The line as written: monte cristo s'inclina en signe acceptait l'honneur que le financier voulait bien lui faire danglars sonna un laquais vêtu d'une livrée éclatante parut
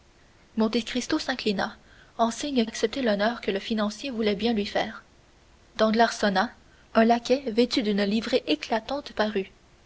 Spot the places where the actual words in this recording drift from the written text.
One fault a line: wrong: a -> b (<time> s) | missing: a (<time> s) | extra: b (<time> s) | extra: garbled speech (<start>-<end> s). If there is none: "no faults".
no faults